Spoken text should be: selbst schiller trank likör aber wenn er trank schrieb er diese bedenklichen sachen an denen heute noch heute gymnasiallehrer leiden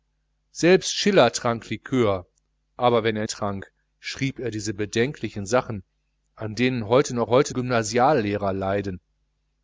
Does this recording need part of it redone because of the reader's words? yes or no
no